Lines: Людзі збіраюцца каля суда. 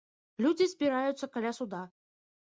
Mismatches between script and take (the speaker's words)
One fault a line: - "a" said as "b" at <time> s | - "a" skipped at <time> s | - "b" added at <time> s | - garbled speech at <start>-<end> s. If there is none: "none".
none